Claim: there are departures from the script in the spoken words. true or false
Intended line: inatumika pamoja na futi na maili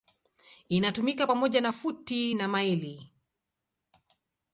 false